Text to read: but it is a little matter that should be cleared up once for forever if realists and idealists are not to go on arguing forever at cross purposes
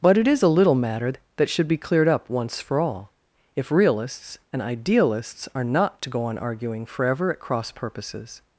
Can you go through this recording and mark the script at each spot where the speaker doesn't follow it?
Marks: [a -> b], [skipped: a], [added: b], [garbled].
but it is a little matter that should be cleared up once for [forever -> all] if realists and idealists are not to go on arguing forever at cross purposes